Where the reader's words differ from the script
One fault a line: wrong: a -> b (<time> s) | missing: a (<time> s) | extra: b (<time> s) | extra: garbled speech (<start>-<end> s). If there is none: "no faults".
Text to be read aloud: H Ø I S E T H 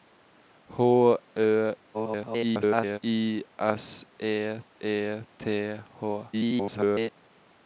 extra: garbled speech (1.9-3.0 s)
extra: E (4.8 s)
extra: garbled speech (6.3-7.1 s)